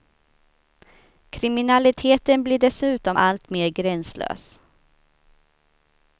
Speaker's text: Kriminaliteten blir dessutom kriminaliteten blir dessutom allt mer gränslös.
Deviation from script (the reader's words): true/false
true